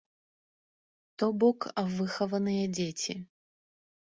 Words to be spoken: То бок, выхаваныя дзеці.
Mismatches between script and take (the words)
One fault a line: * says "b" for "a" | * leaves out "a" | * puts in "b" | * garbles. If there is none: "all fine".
all fine